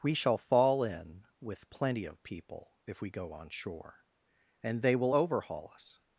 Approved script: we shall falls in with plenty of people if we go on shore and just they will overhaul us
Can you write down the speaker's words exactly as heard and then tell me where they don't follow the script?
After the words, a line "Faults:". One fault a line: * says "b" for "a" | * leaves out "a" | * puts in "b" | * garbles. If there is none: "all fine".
we shall fall in with plenty of people if we go on shore and they will overhaul us
Faults:
* says "fall" for "falls"
* leaves out "just"